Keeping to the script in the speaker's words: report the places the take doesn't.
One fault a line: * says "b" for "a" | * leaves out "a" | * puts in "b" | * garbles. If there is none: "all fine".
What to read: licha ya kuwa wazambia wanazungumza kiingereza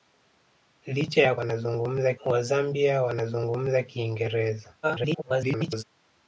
* says "wanazungumza" for "kuwa"
* garbles